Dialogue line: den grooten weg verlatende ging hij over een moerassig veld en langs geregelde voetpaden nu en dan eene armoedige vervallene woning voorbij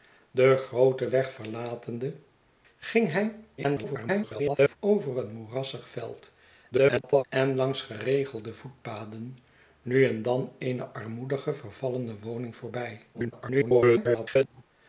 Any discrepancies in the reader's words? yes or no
yes